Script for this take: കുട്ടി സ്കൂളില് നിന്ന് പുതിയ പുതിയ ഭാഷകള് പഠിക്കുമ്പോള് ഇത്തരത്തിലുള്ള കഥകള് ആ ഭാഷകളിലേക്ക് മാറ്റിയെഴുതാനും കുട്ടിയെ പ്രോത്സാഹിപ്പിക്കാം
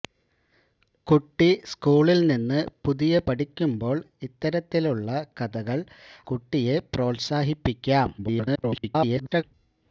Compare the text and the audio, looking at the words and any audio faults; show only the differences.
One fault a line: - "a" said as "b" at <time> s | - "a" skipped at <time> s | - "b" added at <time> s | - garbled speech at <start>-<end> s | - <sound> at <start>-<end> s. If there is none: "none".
- "പുതിയ ഭാഷകള്" skipped at 3.2 s
- "ആ ഭാഷകളിലേക്ക് മാറ്റിയെഴുതാനും" skipped at 5.8 s
- garbled speech at 8.2-9.4 s